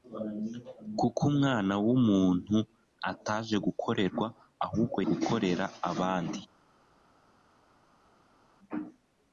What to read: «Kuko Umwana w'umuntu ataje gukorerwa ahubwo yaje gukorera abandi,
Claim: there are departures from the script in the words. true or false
true